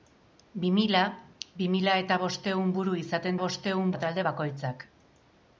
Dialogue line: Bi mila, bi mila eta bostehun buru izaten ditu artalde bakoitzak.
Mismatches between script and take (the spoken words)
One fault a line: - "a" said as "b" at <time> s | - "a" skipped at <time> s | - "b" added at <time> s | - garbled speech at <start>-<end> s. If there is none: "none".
- "ditu" said as "bostehun" at 3.4 s